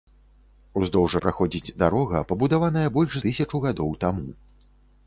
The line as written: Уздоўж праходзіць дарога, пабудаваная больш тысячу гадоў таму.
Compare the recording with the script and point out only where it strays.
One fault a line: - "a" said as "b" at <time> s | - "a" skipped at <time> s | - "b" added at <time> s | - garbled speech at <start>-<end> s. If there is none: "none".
none